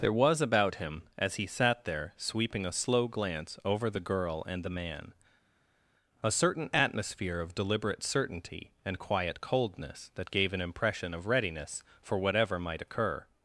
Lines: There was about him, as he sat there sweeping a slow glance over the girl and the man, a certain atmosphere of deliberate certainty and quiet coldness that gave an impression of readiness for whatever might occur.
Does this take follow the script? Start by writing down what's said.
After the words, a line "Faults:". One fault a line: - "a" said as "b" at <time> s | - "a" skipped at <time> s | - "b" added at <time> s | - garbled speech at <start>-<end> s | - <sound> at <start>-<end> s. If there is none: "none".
There was about him, as he sat there sweeping a slow glance over the girl and the man, a certain atmosphere of deliberate certainty and quiet coldness that gave an impression of readiness for whatever might occur.
Faults:
none